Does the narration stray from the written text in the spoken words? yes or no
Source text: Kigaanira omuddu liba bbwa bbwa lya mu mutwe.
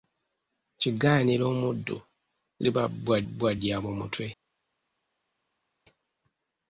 no